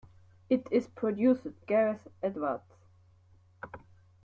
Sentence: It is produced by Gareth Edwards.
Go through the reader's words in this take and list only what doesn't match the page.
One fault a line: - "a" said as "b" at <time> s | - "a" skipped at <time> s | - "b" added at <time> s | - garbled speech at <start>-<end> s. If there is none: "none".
- "by" skipped at 1.6 s